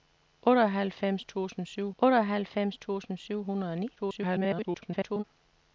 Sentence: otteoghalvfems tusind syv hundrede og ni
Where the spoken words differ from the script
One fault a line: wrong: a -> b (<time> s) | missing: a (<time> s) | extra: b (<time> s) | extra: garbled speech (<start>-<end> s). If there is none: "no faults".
extra: otteoghalvfems tusind syv (2.0 s)
extra: garbled speech (4.0-5.2 s)